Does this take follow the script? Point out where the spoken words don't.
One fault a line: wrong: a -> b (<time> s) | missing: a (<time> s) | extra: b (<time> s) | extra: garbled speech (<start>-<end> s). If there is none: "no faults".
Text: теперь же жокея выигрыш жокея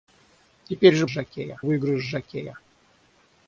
no faults